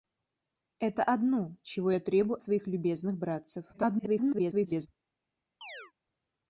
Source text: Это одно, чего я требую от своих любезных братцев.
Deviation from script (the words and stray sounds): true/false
true